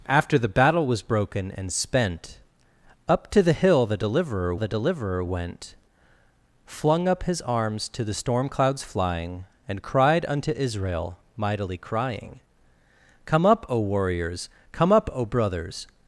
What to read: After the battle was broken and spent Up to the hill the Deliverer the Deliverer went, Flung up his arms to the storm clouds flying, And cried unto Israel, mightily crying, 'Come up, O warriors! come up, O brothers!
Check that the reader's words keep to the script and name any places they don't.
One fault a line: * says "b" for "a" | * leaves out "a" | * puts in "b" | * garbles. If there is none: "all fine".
all fine